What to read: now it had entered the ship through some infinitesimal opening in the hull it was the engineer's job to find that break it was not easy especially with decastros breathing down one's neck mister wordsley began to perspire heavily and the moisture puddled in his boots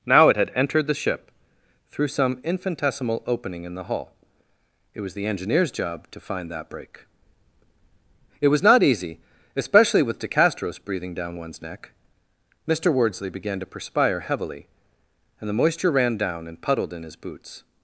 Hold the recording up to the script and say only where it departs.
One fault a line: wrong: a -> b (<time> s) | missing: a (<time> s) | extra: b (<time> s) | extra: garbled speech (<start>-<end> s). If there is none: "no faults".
extra: ran down and (15.9 s)